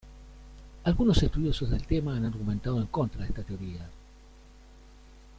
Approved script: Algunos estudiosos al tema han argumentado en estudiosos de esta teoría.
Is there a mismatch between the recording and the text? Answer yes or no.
yes